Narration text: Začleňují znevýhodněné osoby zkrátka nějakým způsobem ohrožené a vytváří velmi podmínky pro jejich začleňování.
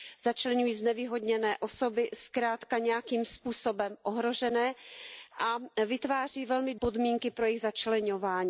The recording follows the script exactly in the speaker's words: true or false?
true